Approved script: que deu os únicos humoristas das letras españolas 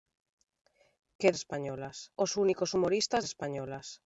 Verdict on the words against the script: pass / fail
fail